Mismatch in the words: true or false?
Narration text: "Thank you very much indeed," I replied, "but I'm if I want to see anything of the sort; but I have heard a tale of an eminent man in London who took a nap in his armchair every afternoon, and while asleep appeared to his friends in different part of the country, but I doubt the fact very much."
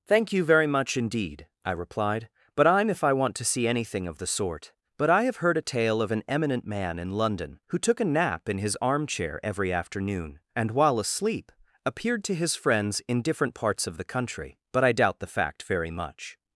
true